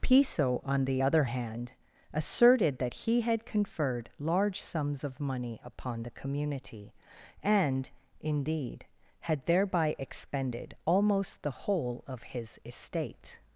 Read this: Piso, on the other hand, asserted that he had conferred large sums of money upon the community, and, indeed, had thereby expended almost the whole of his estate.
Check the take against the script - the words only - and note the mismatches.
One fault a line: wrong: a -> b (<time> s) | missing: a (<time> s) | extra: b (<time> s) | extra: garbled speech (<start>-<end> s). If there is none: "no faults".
no faults